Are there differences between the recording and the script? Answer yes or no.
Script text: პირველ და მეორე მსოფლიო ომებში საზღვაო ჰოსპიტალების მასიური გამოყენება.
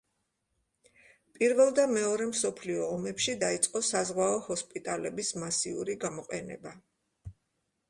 yes